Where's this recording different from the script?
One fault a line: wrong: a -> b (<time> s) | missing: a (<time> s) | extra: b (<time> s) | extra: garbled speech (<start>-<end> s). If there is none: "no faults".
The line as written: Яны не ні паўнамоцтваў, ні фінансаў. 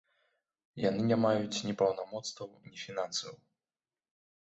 extra: маюць (1.3 s)